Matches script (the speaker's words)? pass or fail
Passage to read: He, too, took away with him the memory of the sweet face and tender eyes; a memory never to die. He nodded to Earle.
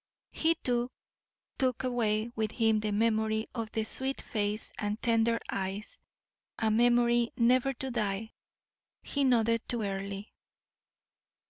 pass